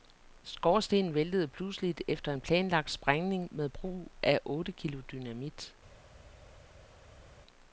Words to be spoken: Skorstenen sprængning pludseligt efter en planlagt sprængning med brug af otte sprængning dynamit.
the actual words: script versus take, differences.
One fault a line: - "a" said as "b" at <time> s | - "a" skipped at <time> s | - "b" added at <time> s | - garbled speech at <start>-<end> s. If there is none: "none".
- "sprængning" said as "væltede" at 1.1 s
- "sprængning" said as "kilo" at 4.7 s